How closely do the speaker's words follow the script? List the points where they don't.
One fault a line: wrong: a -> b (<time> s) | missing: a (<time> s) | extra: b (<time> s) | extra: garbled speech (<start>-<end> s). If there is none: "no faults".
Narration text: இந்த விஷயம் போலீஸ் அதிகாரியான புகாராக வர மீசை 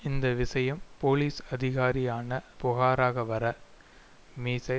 no faults